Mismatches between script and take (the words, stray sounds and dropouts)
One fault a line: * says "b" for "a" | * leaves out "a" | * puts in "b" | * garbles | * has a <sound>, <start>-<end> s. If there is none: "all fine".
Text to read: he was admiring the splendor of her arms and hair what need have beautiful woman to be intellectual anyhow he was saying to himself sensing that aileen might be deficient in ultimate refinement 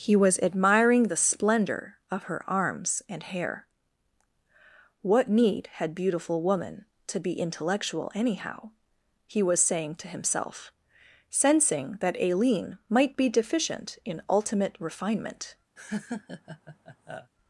* says "had" for "have"
* has a laugh, 15.8-17.3 s